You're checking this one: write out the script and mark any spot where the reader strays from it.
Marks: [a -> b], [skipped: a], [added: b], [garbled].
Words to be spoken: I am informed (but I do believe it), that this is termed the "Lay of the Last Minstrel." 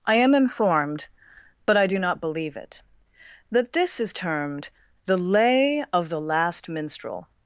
I am informed (but I do [added: not] believe it), that this is termed the "Lay of the Last Minstrel."